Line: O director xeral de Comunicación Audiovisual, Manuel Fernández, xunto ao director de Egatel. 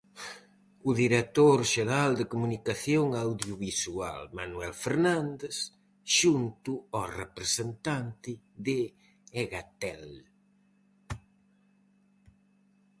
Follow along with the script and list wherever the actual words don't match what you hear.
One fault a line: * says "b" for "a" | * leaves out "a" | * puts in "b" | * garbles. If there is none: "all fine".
* says "representante" for "director"